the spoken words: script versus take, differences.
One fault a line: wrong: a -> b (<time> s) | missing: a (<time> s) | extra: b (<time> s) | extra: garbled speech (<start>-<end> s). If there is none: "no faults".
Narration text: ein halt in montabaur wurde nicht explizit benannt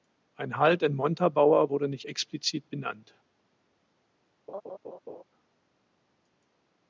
no faults